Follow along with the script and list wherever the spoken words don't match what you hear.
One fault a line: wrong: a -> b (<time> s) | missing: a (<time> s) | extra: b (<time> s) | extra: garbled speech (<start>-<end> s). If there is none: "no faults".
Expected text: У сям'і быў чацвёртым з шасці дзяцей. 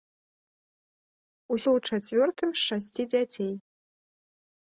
missing: сям'і (1.6 s)